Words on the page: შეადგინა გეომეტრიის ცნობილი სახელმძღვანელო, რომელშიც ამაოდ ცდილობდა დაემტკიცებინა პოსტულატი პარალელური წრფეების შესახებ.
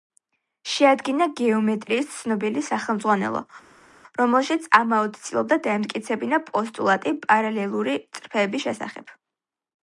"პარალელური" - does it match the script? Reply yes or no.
yes